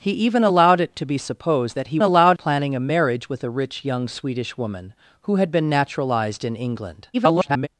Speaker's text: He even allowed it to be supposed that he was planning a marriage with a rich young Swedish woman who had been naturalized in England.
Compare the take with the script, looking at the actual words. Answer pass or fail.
fail